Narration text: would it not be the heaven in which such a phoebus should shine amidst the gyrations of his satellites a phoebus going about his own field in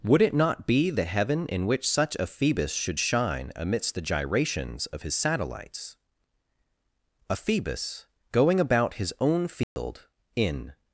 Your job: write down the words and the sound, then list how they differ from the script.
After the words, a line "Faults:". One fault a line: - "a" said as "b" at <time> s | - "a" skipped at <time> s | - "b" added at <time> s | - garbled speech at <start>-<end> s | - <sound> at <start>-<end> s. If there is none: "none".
would it not be the heaven in which such a phoebus should shine amidst the gyrations of his satellites a phoebus going about his own field in
Faults:
- dropout at 9.6-9.8 s